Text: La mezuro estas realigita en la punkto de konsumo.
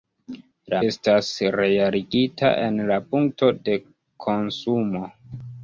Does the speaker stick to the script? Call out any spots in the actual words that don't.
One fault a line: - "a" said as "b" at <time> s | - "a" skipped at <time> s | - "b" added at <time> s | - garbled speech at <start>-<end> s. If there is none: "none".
- "mezuro" skipped at 0.8 s